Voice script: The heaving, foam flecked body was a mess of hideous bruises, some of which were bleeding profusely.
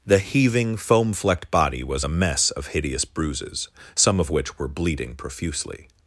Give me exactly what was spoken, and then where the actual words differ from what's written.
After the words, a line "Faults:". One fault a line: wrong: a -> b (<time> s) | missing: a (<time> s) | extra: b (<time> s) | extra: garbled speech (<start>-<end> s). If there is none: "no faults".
The heaving, foam flecked body was a mess of hideous bruises, some of which were bleeding profusely.
Faults:
no faults